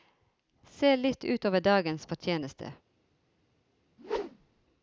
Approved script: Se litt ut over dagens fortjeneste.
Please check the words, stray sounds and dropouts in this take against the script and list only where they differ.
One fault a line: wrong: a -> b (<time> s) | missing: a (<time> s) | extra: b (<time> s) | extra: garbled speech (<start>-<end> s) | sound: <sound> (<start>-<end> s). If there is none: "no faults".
sound: whoosh (4.0-4.7 s)